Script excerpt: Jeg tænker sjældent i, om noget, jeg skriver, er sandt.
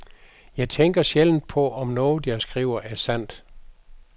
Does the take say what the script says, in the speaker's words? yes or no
no